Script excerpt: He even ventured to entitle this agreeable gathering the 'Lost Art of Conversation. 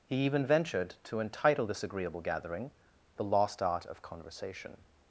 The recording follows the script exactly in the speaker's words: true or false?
true